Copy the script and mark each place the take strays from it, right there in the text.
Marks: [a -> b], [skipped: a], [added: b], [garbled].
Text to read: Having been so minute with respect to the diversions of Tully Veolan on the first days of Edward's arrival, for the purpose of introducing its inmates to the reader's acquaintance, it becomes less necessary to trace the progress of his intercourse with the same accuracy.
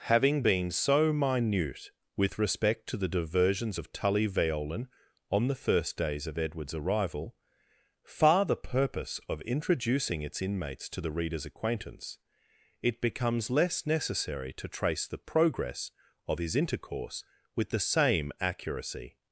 Having been so minute with respect to the diversions of Tully Veolan on the first days of Edward's arrival, [for -> far] the purpose of introducing its inmates to the reader's acquaintance, it becomes less necessary to trace the progress of his intercourse with the same accuracy.